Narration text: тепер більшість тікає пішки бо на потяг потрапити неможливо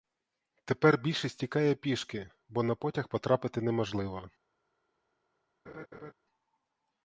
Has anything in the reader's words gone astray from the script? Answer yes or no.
no